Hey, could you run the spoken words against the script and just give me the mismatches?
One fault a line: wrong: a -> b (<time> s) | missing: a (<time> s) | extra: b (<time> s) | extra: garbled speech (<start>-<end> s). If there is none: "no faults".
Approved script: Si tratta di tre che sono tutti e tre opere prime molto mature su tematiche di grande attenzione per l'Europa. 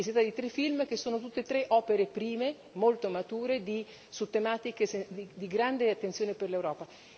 extra: film (0.4 s)